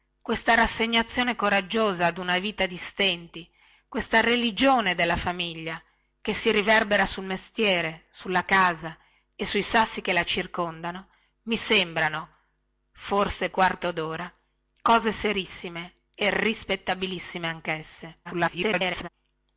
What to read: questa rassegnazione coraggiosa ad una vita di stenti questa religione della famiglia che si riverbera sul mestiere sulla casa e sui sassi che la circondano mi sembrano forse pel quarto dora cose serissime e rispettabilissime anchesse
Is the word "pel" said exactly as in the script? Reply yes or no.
no